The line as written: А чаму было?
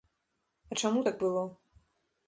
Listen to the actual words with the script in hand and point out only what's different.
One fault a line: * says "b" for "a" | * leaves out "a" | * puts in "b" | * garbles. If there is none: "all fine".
* puts in "так"